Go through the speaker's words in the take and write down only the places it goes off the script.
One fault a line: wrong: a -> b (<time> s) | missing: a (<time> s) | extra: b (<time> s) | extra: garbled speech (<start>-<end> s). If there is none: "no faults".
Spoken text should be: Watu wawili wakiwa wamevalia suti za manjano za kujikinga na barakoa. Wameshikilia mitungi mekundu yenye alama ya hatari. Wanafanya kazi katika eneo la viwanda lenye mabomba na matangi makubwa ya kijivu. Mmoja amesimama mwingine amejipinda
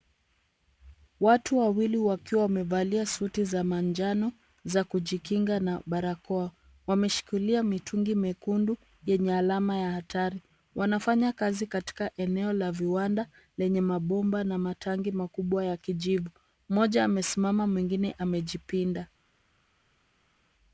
no faults